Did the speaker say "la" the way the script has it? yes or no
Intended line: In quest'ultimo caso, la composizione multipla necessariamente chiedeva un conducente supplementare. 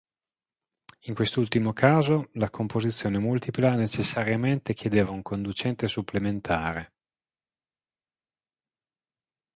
yes